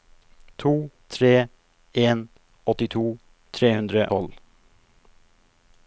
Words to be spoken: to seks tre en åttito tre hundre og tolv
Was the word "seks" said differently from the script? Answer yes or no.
yes